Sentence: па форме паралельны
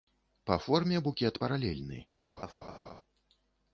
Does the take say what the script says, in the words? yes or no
no